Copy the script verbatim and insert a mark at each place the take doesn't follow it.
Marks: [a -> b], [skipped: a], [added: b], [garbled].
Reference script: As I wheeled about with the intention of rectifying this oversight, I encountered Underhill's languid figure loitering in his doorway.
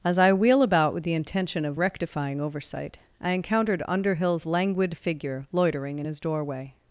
As I [wheeled -> wheel] about with the intention of rectifying [skipped: this] oversight, I encountered Underhill's languid figure loitering in his doorway.